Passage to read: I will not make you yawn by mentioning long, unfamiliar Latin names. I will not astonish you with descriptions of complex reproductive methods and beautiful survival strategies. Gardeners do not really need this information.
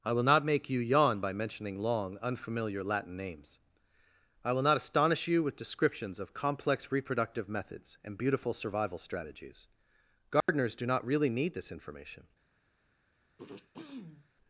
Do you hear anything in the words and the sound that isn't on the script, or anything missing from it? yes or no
yes